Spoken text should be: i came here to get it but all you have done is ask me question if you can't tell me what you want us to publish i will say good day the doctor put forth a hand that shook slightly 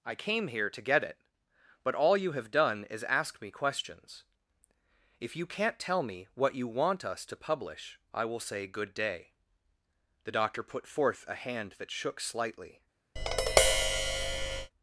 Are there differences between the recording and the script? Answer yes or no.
yes